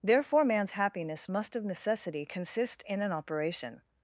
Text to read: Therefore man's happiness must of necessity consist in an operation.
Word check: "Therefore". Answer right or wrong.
right